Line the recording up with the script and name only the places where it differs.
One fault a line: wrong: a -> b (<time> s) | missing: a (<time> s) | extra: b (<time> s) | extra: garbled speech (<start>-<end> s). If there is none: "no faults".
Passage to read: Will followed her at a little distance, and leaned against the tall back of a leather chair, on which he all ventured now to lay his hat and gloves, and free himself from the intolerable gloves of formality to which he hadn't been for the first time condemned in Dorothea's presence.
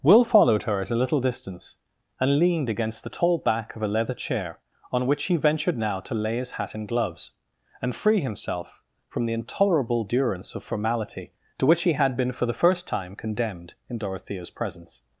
missing: all (5.3 s)
wrong: gloves -> durance (10.0 s)
wrong: hadn't -> had (11.9 s)